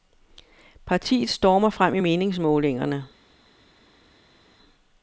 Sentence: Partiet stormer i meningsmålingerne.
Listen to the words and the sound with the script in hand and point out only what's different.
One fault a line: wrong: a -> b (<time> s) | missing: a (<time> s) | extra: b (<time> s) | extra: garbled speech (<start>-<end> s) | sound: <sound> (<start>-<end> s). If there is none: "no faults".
extra: frem (1.7 s)